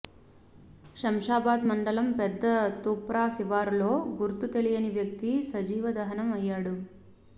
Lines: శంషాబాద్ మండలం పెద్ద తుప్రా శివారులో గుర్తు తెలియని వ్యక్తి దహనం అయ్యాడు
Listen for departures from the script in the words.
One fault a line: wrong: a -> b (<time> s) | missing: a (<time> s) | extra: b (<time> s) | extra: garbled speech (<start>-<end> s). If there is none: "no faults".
extra: సజీవ (5.5 s)